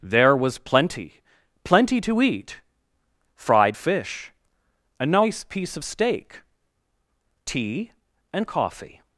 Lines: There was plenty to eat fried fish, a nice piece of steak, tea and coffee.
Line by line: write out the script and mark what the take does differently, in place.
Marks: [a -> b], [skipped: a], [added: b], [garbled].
There was plenty [added: plenty] to eat fried fish, a nice piece of steak, tea and coffee.